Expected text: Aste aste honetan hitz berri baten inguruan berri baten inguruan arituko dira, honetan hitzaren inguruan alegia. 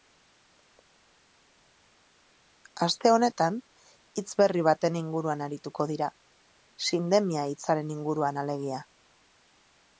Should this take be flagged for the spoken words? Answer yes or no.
yes